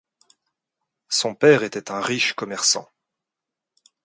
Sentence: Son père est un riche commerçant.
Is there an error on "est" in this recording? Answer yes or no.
yes